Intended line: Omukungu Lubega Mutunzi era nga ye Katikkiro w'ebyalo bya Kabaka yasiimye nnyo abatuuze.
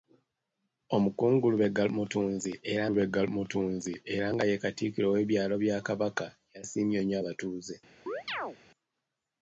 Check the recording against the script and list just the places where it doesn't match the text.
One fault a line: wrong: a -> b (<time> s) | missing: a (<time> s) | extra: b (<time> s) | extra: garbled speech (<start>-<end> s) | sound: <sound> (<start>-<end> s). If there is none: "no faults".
extra: Lubega Mutunzi era (2.9 s)
sound: chirp (8.1-8.6 s)